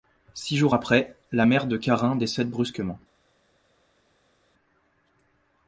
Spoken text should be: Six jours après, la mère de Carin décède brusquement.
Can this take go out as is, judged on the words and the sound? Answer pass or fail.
pass